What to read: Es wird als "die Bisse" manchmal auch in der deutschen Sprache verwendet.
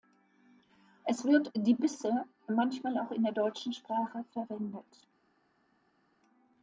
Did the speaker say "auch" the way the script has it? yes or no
yes